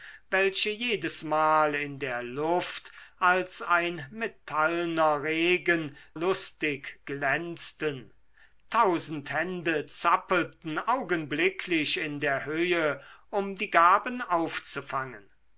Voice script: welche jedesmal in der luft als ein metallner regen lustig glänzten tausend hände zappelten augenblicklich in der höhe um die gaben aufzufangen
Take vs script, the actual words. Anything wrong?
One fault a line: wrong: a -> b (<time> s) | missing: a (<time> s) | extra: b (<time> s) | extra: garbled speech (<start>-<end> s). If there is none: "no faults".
no faults